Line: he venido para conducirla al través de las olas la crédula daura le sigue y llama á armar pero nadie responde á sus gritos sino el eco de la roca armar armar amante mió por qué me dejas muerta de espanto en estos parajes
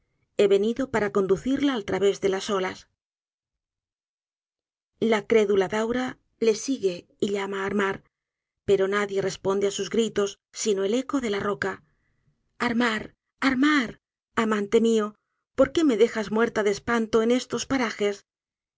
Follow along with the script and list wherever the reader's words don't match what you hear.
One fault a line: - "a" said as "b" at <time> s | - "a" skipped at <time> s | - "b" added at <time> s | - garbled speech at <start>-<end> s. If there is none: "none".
none